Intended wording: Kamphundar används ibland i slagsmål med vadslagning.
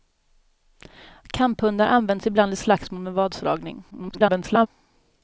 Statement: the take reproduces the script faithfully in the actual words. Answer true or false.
false